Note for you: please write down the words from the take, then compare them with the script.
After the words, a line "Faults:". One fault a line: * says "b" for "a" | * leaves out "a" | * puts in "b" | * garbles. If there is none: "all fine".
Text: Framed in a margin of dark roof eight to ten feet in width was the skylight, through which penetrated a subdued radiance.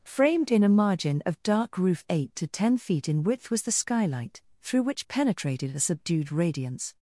Framed in a margin of dark roof eight to ten feet in width was the skylight, through which penetrated a subdued radiance.
Faults:
all fine